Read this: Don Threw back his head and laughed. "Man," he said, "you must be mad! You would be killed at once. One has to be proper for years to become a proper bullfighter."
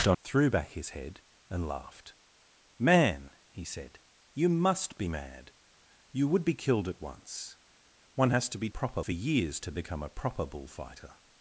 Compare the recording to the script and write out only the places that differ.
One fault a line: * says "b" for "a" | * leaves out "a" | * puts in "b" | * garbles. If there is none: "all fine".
all fine